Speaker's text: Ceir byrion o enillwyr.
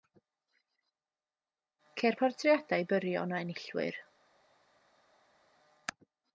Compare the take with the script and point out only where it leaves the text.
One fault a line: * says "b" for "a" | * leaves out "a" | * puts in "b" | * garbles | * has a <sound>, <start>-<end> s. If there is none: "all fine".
* puts in "portreadau"